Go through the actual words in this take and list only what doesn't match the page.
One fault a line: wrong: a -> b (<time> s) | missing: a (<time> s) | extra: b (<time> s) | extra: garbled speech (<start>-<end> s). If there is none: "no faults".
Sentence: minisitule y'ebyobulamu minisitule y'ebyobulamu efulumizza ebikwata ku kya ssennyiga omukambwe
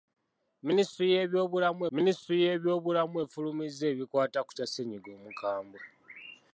no faults